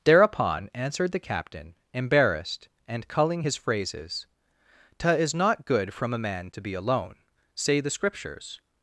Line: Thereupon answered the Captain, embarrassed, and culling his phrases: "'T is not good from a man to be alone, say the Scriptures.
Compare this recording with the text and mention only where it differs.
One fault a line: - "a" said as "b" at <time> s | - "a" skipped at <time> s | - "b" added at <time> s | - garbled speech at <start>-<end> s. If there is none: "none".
none